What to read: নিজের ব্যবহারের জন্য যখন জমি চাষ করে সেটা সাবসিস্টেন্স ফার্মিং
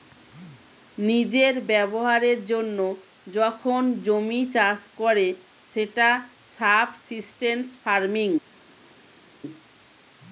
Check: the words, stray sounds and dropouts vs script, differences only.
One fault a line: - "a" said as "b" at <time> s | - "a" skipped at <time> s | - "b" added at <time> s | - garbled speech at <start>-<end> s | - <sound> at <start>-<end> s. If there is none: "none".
none